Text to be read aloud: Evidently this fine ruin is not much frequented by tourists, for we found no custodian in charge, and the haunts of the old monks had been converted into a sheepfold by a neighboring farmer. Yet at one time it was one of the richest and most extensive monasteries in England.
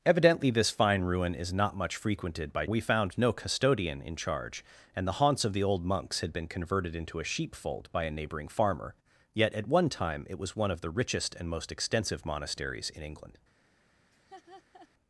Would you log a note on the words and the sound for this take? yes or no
yes